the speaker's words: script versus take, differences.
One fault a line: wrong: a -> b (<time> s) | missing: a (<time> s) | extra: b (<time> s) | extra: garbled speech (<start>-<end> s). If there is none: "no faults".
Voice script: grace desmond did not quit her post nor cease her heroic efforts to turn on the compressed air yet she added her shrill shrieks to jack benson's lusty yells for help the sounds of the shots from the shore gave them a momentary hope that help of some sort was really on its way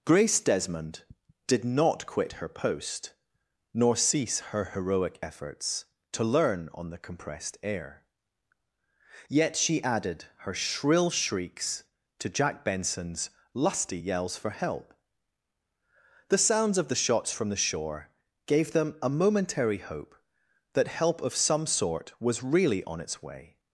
wrong: turn -> learn (6.2 s)